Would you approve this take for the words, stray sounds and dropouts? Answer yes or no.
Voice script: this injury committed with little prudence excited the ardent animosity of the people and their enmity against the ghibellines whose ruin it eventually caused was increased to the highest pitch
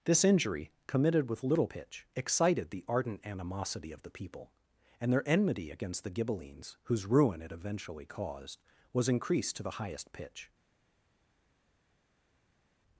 no